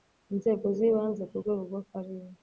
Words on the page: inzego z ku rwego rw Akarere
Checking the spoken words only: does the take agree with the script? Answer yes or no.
no